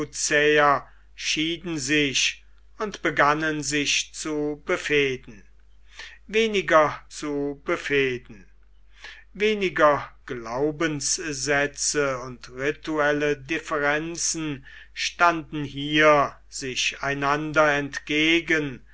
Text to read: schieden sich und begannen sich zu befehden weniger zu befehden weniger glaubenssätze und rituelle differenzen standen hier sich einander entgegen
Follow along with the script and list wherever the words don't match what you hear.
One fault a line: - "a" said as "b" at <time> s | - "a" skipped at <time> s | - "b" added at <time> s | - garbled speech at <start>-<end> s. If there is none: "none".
none